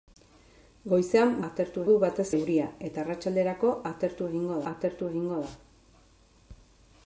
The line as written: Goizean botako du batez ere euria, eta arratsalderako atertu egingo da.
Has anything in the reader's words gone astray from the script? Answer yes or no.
yes